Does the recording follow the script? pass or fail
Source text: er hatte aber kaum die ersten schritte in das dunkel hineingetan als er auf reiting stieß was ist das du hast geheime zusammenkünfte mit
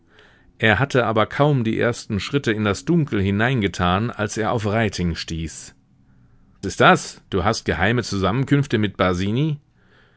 fail